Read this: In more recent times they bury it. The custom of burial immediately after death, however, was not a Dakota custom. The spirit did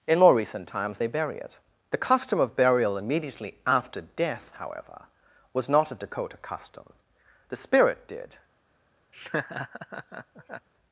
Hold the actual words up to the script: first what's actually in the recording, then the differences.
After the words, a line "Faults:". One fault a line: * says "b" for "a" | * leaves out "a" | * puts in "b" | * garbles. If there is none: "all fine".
In more recent times they bury it. The custom of burial immediately after death, however, was not a Dakota custom. The spirit did
Faults:
all fine